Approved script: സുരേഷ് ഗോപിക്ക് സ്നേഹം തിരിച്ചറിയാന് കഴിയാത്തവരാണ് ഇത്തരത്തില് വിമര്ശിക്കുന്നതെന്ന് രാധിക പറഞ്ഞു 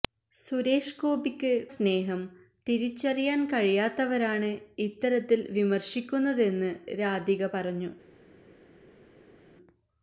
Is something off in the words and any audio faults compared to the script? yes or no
no